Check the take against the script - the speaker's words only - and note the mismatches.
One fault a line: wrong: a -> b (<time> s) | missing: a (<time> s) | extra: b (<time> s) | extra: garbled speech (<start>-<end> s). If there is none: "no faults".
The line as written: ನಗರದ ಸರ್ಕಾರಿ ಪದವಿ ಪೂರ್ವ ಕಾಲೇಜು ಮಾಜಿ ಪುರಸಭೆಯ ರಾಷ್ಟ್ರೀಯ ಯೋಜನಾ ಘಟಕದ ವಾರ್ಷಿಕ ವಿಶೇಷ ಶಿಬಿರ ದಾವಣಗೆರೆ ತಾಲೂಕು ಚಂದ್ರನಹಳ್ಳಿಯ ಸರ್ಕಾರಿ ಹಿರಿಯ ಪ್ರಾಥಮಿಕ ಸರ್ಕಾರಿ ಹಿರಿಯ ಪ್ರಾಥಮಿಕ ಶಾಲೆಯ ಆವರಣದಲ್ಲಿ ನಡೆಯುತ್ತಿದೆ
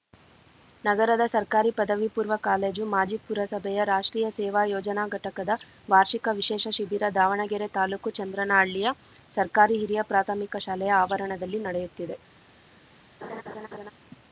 extra: ಸೇವಾ (4.4 s)
missing: ಸರ್ಕಾರಿ ಹಿರಿಯ ಪ್ರಾಥಮಿಕ (10.6 s)